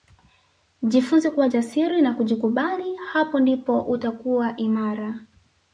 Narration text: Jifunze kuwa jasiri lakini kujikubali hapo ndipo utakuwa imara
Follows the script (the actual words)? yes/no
no